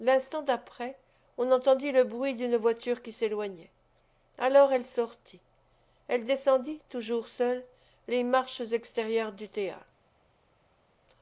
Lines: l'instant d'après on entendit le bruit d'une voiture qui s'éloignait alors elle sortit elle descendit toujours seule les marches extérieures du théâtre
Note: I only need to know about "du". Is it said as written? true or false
true